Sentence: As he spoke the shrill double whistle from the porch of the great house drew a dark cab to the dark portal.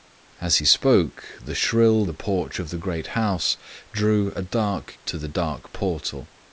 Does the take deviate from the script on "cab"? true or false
true